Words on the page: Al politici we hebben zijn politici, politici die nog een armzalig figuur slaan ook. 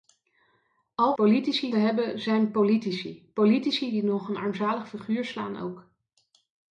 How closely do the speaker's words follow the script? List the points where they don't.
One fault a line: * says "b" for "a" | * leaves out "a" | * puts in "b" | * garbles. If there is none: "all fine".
all fine